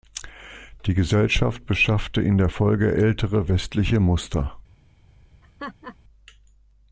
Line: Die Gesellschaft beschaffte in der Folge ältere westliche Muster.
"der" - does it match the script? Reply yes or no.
yes